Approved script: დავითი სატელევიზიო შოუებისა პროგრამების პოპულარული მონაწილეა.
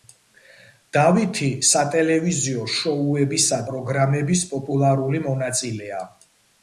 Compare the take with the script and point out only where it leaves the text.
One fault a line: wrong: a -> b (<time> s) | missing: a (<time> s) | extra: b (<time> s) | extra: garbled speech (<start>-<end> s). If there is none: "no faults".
no faults